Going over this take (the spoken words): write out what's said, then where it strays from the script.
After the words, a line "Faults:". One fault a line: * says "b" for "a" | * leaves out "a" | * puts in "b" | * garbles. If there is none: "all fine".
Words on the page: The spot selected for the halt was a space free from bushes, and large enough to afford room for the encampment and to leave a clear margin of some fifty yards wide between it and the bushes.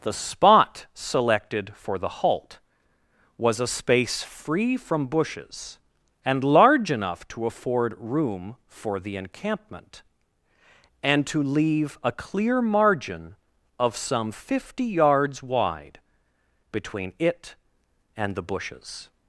The spot selected for the halt was a space free from bushes, and large enough to afford room for the encampment and to leave a clear margin of some fifty yards wide between it and the bushes.
Faults:
all fine